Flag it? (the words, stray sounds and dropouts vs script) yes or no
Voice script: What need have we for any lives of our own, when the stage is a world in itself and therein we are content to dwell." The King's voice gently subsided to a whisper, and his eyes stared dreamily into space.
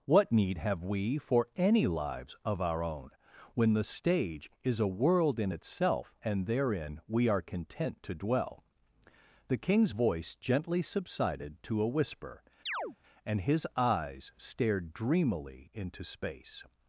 yes